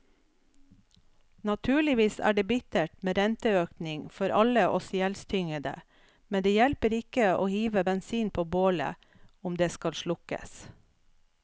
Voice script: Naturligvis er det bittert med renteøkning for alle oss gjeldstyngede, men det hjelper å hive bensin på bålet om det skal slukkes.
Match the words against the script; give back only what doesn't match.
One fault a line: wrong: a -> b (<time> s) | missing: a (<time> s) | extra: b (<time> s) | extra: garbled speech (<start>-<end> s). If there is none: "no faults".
extra: ikke (7.0 s)